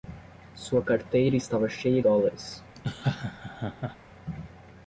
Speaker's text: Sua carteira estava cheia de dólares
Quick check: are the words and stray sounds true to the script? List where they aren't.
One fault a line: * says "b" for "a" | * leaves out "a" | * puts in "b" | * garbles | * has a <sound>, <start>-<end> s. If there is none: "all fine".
* leaves out "de"
* has a laugh, 2.8-4.0 s